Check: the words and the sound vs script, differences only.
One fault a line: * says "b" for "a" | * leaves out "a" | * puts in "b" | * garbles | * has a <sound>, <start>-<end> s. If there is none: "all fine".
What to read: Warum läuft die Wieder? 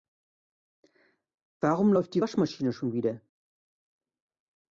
* puts in "Waschmaschine schon"